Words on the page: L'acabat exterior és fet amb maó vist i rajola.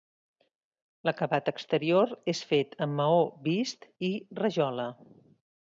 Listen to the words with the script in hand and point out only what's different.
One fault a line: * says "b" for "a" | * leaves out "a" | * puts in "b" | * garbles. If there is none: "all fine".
all fine